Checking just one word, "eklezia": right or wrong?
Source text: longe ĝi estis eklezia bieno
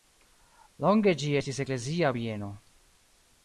right